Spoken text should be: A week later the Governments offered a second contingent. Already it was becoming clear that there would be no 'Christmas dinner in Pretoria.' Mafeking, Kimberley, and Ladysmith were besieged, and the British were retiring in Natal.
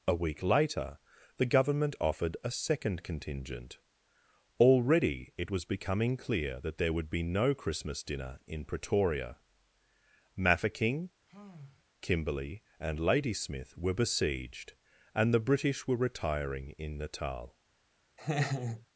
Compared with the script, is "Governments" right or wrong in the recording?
wrong